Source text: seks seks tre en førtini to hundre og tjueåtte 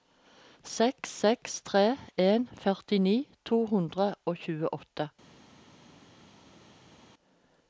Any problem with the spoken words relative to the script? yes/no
no